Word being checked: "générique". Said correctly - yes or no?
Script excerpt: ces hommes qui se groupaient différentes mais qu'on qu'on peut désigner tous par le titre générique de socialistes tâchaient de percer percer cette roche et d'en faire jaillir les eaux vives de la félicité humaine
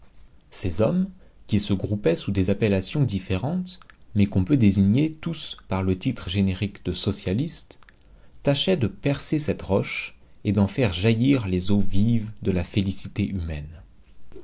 yes